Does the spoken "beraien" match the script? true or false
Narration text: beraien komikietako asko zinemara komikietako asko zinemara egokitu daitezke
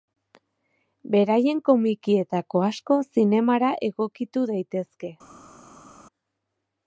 true